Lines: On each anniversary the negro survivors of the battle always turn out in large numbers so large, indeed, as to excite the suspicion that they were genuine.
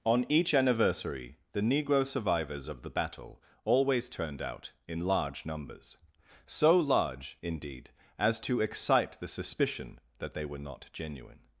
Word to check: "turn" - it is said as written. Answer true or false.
false